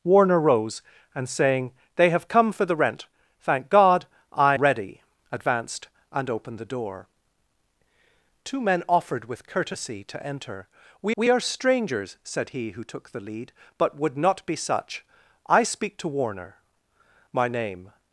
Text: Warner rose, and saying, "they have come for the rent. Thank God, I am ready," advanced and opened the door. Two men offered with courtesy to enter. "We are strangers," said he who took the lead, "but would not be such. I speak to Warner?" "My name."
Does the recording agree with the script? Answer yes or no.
no